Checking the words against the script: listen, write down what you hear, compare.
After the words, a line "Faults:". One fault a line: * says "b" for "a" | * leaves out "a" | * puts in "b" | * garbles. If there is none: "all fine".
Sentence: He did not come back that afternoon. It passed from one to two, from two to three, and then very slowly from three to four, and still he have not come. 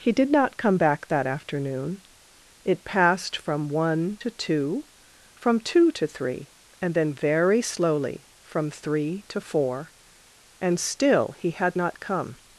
He did not come back that afternoon. It passed from one to two, from two to three, and then very slowly from three to four, and still he had not come.
Faults:
* says "had" for "have"